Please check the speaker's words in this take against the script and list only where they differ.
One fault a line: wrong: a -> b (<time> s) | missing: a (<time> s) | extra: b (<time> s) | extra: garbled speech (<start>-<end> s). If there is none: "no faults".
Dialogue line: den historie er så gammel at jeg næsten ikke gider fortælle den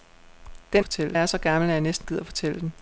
wrong: historie -> fortælle (0.8 s)
missing: ikke (2.1 s)